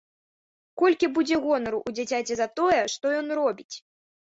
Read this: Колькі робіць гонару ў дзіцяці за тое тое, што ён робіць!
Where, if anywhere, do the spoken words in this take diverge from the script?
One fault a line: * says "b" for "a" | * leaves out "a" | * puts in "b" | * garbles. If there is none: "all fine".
* says "будзе" for "робіць"
* leaves out "тое"